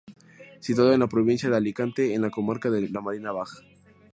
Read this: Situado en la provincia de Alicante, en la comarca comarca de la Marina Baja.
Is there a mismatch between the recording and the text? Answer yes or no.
yes